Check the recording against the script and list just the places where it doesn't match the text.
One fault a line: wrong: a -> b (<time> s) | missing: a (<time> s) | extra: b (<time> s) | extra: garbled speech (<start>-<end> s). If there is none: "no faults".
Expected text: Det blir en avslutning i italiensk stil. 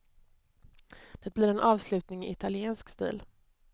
no faults